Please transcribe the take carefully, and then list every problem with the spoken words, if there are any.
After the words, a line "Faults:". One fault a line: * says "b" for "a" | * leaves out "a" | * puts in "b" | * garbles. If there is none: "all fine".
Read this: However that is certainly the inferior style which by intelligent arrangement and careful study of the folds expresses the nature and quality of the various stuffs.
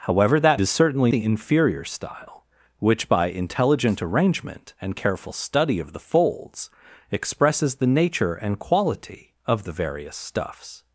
However that is certainly the inferior style which by intelligent arrangement and careful study of the folds expresses the nature and quality of the various stuffs.
Faults:
all fine